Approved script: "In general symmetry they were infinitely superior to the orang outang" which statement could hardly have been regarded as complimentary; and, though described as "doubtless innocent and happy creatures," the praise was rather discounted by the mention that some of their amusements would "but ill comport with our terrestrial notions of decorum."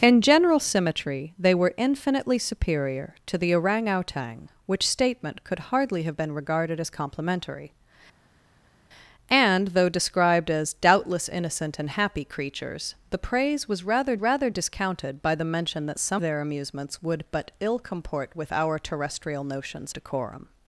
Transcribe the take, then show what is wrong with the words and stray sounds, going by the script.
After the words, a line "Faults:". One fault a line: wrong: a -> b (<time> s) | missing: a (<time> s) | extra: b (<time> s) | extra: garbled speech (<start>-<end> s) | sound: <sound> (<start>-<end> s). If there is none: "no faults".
"In general symmetry they were infinitely superior to the orang outang" which statement could hardly have been regarded as complimentary; and, though described as "doubtless innocent and happy creatures," the praise was rather rather discounted by the mention that some their amusements would "but ill comport with our terrestrial notions decorum."
Faults:
extra: rather (14.2 s)
missing: of (16.2 s)
missing: of (19.9 s)